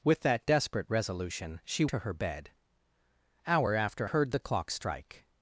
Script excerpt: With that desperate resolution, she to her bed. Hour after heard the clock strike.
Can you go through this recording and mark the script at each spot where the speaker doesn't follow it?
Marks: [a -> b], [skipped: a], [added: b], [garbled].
With that desperate resolution, she to her bed. Hour after heard the clock strike.